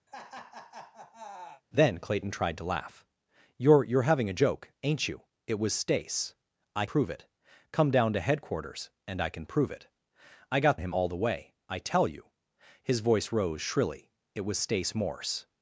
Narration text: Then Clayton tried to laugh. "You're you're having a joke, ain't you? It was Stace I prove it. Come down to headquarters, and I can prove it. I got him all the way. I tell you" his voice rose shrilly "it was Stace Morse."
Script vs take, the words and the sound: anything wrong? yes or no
yes